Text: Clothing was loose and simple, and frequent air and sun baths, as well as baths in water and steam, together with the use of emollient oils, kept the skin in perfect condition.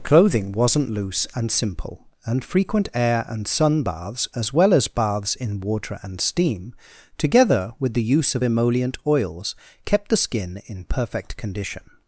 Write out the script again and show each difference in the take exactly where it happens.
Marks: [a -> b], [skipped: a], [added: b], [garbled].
Clothing [was -> wasn't] loose and simple, and frequent air and sun baths, as well as baths in water and steam, together with the use of emollient oils, kept the skin in perfect condition.